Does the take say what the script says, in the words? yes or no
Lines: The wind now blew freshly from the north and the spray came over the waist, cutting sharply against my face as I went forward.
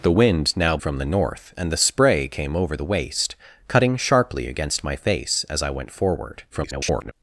no